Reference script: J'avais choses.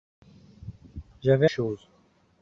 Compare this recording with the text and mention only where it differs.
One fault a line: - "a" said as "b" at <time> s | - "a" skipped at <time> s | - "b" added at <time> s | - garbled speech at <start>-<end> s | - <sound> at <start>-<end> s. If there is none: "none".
none